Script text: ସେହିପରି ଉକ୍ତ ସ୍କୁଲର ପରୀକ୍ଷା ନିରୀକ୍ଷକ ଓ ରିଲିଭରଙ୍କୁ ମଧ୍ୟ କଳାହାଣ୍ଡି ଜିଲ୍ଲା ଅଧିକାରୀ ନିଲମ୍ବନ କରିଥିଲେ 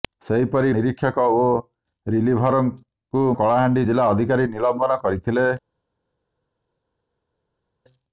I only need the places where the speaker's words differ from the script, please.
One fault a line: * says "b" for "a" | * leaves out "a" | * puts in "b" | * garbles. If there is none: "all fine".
* leaves out "ଉକ୍ତ ସ୍କୁଲର ପରୀକ୍ଷା"
* leaves out "ମଧ୍ୟ"